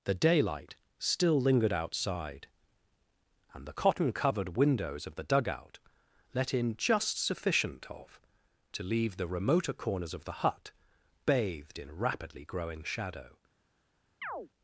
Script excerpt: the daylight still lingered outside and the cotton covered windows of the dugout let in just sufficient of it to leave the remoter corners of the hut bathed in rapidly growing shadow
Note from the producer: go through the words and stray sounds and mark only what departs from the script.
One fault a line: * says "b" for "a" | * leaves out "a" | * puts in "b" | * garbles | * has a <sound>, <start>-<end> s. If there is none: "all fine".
* leaves out "it"
* has a chirp, 14.2-14.5 s